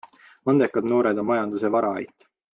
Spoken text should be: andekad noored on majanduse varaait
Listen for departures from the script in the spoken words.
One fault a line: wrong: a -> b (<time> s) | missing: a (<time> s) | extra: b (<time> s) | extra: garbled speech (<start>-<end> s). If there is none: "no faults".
no faults